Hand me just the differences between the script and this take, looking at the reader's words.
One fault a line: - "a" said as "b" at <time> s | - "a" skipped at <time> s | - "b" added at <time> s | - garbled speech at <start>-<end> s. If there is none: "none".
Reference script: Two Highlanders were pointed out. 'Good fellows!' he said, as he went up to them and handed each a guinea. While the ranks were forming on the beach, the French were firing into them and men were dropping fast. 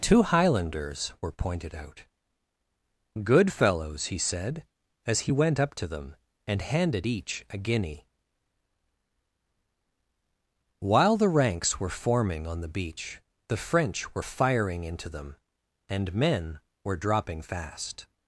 none